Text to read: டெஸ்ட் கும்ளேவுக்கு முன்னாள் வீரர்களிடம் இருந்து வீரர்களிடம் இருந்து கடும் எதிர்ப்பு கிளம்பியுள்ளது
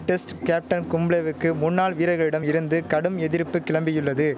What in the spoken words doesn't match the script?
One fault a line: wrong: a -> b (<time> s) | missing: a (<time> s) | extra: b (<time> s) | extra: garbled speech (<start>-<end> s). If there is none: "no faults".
extra: கேப்டன் (0.4 s)
missing: வீரர்களிடம் இருந்து (2.8 s)